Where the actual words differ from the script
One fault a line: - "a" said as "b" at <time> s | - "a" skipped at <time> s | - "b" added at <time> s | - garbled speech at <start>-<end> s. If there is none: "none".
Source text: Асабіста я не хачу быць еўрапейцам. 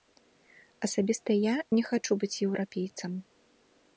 none